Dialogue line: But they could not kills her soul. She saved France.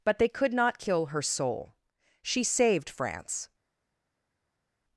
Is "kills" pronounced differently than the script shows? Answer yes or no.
yes